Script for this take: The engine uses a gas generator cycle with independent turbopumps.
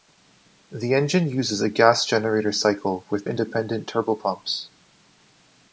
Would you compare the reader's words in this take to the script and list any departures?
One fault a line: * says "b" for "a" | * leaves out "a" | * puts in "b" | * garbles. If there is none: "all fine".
all fine